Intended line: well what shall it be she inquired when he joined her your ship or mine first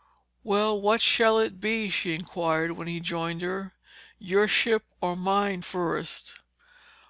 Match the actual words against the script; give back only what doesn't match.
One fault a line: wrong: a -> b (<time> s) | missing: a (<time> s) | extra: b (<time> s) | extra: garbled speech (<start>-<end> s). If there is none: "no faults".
no faults